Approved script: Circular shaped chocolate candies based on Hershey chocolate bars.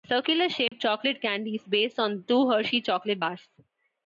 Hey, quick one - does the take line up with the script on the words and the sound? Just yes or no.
no